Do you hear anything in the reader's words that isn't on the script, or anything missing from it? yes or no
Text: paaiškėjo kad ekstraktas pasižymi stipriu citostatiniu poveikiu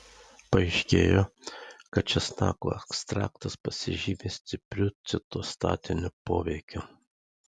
yes